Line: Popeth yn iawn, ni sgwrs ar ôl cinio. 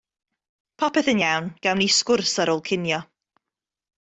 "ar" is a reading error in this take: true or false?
false